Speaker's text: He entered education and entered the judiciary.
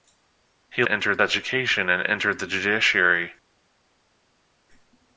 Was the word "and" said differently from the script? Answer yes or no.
no